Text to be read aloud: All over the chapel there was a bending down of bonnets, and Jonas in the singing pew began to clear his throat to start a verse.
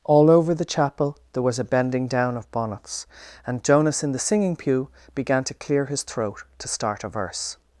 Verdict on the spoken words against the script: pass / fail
pass